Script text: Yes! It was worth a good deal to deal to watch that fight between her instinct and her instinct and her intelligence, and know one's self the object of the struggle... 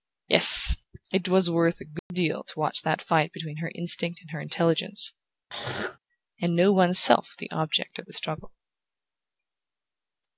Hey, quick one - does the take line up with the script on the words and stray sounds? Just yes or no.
no